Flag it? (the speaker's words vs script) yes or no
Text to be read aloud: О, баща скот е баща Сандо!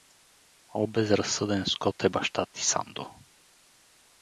yes